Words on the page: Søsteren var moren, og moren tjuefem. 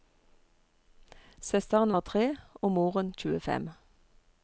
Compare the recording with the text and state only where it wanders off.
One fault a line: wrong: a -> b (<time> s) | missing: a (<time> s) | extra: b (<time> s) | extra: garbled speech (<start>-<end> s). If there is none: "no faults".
wrong: moren -> tre (2.0 s)